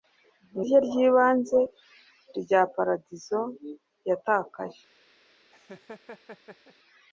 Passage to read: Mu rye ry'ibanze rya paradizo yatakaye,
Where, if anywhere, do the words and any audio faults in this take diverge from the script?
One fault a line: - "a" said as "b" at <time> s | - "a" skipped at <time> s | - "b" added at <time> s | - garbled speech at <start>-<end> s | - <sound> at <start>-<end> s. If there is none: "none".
- laugh at 5.5-6.7 s